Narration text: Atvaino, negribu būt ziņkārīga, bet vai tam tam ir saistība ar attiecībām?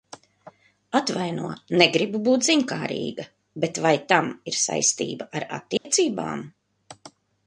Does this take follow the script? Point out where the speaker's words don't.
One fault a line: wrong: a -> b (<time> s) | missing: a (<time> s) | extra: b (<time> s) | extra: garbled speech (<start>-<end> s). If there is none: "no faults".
missing: tam (4.3 s)